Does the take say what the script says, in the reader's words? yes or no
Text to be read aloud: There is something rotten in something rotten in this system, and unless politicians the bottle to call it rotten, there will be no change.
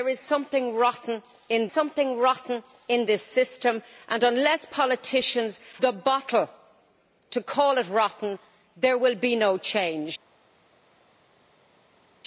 yes